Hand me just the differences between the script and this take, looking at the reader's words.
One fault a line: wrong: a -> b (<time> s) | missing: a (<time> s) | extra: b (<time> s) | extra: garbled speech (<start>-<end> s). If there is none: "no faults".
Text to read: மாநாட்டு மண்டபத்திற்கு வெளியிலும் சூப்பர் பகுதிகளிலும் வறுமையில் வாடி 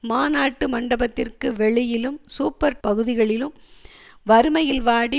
no faults